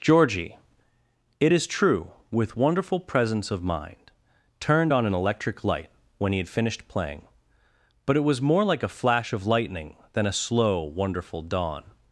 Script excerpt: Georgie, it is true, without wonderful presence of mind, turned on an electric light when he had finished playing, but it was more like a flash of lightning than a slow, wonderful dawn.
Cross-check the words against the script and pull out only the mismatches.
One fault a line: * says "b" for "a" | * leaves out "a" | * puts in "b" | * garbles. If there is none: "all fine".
* says "with" for "without"